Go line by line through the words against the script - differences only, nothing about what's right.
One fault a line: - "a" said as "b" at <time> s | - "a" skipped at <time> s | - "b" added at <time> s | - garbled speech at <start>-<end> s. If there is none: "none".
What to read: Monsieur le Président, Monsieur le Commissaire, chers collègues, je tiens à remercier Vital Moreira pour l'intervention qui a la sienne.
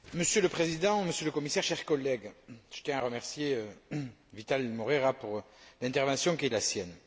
none